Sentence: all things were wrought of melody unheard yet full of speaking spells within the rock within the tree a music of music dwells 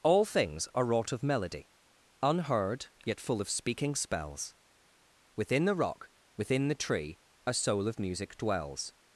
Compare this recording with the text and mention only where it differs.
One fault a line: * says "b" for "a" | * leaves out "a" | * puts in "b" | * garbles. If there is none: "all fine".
* says "are" for "were"
* says "soul" for "music"